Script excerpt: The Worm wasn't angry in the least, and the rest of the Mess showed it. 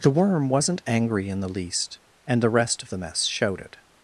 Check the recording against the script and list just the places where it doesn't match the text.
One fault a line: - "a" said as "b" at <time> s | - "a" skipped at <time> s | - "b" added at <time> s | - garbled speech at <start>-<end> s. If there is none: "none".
none